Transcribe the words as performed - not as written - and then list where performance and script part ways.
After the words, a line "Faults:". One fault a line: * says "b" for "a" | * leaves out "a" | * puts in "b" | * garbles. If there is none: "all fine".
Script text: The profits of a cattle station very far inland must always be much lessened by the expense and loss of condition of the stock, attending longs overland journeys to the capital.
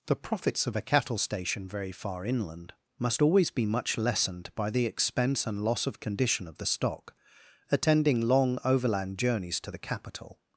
The profits of a cattle station very far inland must always be much lessened by the expense and loss of condition of the stock, attending long overland journeys to the capital.
Faults:
* says "long" for "longs"